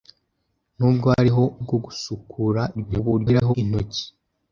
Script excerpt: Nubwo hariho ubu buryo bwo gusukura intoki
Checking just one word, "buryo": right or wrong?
wrong